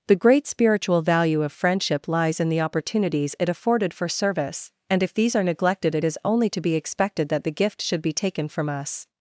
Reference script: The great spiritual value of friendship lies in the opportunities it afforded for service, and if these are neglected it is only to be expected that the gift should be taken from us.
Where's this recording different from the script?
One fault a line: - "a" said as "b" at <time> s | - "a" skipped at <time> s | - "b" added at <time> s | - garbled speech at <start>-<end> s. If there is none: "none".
none